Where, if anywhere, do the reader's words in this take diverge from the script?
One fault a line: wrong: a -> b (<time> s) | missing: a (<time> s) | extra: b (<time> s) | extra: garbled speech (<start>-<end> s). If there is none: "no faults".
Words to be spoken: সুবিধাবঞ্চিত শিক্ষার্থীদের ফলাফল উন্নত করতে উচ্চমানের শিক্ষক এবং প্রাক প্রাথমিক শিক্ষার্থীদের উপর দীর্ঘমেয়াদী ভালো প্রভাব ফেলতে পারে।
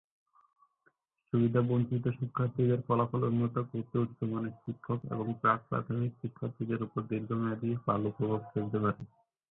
no faults